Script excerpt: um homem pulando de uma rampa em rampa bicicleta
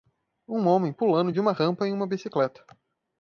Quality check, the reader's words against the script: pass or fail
fail